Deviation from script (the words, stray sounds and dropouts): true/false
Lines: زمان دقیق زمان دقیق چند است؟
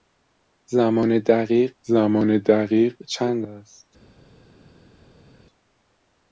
false